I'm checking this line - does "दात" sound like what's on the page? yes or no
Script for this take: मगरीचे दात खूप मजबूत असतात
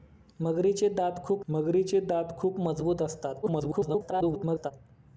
yes